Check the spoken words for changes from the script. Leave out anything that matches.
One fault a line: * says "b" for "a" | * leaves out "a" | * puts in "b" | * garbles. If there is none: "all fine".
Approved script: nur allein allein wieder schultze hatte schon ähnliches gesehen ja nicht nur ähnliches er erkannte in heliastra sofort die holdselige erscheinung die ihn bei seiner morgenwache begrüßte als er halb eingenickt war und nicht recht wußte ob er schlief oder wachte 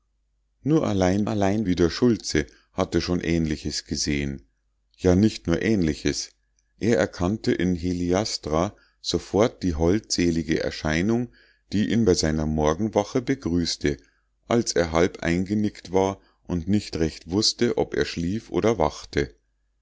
all fine